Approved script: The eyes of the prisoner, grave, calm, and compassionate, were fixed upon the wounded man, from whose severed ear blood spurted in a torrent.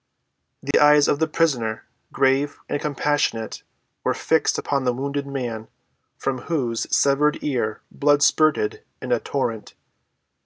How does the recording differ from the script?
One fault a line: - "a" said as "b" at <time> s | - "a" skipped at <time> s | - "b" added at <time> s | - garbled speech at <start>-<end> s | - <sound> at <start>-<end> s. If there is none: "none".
- dropout at 0.7-0.7 s
- "calm" skipped at 2.6 s